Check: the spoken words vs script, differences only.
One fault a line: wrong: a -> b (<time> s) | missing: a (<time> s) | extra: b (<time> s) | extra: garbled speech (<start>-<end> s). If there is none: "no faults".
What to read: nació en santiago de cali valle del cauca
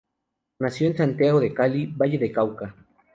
no faults